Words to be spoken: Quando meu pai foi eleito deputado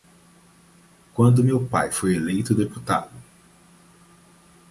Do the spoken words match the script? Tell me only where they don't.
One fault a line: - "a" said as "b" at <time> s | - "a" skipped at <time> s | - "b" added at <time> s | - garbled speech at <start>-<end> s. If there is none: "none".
none